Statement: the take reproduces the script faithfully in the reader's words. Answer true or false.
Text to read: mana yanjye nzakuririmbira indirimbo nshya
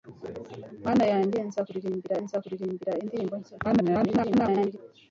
false